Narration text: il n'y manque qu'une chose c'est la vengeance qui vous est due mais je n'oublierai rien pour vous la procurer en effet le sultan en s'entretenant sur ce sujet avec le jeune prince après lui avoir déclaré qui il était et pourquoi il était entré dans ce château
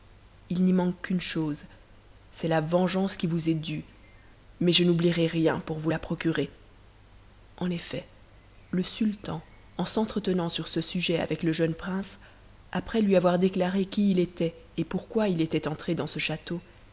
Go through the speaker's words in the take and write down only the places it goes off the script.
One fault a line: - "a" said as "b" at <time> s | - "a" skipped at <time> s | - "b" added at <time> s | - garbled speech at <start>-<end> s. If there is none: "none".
none